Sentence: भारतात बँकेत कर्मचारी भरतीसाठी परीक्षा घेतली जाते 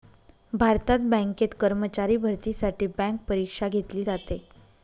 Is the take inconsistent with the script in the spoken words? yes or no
yes